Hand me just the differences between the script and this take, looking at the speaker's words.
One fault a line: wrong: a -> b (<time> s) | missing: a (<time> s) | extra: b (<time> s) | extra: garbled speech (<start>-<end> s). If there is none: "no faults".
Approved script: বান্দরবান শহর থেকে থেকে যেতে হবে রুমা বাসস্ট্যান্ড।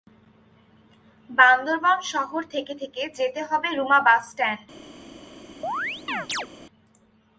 no faults